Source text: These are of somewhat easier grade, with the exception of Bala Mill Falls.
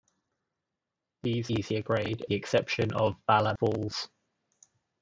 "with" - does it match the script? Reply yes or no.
no